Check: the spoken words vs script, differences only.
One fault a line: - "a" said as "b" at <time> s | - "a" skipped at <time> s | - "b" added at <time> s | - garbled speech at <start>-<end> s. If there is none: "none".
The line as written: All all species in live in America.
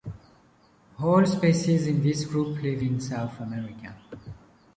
- "all" skipped at 1.3 s
- "this group" added at 2.0 s
- "South" added at 3.0 s